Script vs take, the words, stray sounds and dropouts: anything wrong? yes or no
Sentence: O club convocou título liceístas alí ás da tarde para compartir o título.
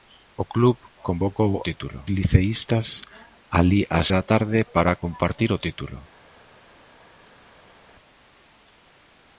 no